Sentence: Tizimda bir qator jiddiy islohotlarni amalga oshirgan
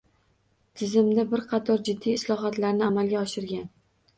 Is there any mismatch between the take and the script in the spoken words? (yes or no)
no